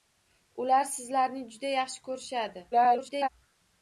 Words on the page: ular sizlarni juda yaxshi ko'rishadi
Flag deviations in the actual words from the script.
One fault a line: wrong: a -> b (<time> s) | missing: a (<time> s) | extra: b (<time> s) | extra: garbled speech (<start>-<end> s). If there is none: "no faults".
extra: garbled speech (2.7-3.3 s)